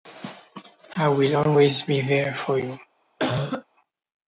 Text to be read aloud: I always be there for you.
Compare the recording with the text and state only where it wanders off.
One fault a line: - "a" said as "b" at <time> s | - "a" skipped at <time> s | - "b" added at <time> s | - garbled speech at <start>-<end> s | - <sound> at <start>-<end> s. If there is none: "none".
- "will" added at 1.1 s
- cough at 3.2-3.6 s